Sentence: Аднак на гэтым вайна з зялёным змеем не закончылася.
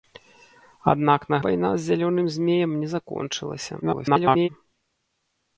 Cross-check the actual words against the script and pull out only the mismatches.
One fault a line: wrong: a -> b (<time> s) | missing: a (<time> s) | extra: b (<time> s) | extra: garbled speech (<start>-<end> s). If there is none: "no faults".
missing: гэтым (1.4 s)
extra: garbled speech (3.8-4.5 s)